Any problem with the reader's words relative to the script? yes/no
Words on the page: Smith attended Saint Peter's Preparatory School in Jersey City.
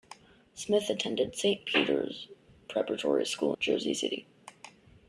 yes